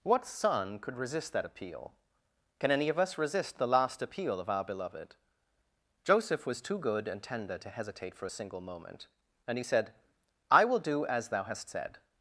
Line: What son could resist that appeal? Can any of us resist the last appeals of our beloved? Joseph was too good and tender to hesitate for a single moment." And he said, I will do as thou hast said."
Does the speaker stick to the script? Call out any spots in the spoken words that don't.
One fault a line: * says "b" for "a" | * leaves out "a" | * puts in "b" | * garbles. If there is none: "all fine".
* says "appeal" for "appeals"